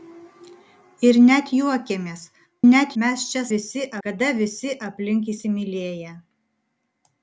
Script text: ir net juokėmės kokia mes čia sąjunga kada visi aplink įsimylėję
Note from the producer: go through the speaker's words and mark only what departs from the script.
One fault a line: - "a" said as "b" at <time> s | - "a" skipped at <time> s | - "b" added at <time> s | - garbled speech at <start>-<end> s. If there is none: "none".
- "kokia" said as "net" at 2.7 s
- "sąjunga" said as "visi" at 3.6 s